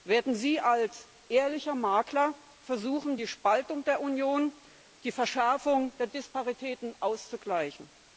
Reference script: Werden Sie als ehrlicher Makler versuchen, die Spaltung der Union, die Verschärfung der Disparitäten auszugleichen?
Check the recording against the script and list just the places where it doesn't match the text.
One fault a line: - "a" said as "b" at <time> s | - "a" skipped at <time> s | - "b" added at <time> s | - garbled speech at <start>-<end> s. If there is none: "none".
none